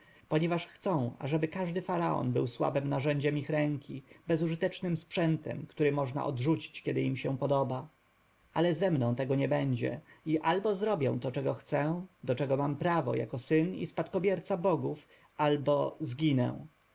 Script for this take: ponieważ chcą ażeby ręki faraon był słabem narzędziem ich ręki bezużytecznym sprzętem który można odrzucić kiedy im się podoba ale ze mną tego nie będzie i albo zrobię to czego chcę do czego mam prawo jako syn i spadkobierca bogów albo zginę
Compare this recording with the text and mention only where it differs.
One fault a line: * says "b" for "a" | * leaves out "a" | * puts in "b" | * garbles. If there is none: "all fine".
* says "każdy" for "ręki"